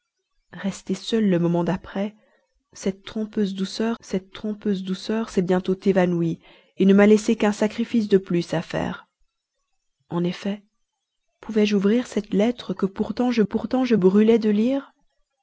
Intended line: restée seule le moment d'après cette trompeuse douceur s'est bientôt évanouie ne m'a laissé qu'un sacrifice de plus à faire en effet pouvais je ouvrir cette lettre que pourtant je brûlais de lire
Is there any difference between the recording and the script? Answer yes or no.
yes